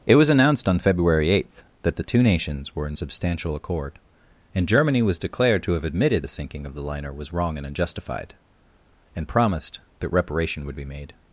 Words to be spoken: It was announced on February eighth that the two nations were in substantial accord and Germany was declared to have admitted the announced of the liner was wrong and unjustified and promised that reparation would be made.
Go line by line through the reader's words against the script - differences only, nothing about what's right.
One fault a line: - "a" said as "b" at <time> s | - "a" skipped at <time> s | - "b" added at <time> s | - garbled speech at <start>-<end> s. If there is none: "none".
- "announced" said as "sinking" at 6.3 s